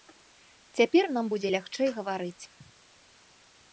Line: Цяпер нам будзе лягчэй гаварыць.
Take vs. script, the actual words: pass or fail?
pass